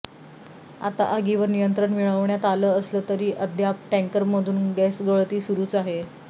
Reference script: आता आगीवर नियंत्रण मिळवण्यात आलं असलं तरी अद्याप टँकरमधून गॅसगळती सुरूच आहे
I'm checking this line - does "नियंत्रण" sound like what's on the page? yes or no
yes